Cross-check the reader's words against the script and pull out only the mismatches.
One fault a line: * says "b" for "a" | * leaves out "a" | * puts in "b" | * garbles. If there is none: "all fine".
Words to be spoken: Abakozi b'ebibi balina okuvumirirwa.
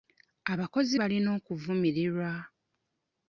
* leaves out "b'ebibi"